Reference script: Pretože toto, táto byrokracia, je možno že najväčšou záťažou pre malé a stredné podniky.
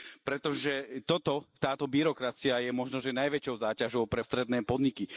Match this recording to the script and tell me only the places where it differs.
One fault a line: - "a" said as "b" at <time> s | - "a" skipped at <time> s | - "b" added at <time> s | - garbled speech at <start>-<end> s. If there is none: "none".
- "malé" skipped at 4.2 s